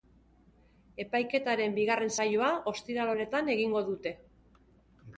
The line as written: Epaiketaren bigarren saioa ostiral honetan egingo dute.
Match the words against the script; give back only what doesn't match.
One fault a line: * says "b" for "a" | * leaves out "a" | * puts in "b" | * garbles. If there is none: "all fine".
all fine